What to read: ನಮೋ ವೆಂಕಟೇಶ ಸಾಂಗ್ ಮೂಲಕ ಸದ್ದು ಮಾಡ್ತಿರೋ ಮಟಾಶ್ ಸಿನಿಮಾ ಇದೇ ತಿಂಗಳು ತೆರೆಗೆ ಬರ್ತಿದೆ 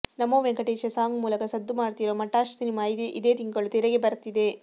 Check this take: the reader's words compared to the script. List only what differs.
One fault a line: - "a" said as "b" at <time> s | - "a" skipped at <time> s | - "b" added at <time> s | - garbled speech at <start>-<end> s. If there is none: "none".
none